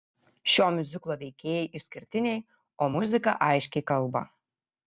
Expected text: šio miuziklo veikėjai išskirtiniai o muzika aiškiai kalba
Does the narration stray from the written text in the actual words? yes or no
no